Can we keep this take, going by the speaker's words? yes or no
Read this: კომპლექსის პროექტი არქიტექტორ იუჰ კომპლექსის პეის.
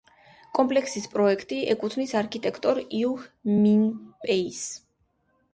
no